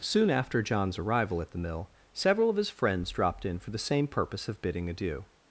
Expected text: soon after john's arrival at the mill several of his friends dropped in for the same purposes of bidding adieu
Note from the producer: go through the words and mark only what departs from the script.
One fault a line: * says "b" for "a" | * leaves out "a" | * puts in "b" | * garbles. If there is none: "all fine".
* says "purpose" for "purposes"